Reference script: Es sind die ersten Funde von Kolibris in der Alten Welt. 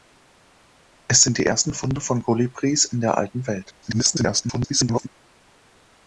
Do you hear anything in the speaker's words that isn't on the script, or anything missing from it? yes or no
yes